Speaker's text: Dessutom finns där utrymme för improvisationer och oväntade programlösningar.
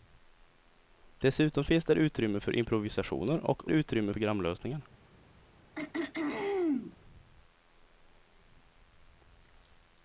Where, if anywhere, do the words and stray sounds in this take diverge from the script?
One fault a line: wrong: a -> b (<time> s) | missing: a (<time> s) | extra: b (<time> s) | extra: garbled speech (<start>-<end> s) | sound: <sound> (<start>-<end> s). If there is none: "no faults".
wrong: oväntade -> utrymme (3.7 s)
sound: throat clearing (5.7-7.0 s)